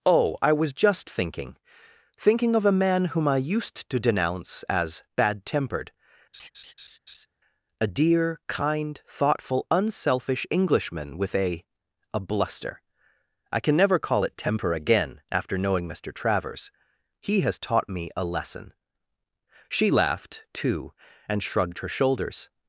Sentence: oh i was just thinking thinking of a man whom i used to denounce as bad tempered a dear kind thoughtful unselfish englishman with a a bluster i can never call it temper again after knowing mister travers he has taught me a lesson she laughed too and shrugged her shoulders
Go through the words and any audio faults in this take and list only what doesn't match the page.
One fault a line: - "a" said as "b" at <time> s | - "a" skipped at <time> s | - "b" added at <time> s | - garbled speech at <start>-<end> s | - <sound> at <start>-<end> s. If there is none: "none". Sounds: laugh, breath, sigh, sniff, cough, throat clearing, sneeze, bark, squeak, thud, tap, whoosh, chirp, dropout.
- laugh at 6.3-7.3 s